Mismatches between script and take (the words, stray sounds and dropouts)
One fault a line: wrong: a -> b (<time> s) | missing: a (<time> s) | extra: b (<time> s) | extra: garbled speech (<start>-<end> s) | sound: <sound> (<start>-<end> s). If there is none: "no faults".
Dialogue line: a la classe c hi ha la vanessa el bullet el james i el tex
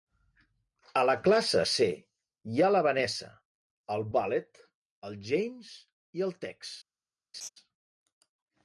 sound: laugh (7.3-7.5 s)